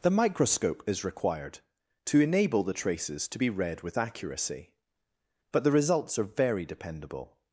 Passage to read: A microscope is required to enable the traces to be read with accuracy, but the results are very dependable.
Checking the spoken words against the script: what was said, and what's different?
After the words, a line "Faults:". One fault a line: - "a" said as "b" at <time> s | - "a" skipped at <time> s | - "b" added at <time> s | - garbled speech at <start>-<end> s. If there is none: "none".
The microscope is required to enable the traces to be read with accuracy, but the results are very dependable.
Faults:
- "A" said as "The" at 0.0 s